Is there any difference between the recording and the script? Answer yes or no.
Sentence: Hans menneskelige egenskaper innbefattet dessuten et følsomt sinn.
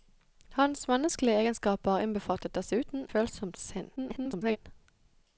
yes